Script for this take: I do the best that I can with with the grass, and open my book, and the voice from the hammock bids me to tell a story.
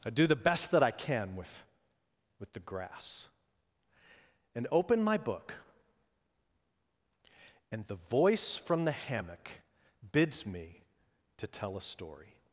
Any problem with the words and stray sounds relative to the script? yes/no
no